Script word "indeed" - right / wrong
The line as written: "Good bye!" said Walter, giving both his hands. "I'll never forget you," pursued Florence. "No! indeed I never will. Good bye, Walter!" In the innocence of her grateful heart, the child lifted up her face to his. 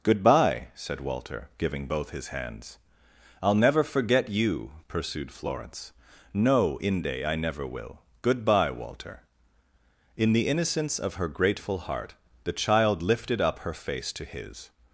wrong